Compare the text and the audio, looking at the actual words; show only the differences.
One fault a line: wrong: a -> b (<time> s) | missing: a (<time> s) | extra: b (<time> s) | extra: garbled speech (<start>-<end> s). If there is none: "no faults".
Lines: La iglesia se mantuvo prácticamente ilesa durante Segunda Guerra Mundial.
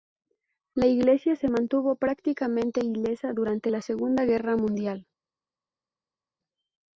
extra: la (3.7 s)